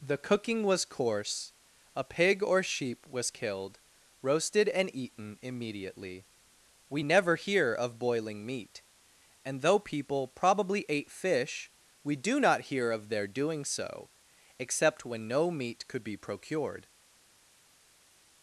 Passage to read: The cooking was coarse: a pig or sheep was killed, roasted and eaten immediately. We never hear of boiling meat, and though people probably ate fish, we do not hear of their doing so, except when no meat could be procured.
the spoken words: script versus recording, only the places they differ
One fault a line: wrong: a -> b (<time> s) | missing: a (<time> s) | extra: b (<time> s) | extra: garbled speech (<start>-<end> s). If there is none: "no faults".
no faults